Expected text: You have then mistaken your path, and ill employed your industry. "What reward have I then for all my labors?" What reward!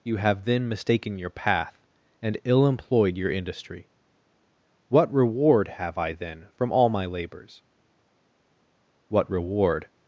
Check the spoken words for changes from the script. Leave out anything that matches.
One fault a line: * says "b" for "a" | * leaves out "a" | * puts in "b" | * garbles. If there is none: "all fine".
* says "from" for "for"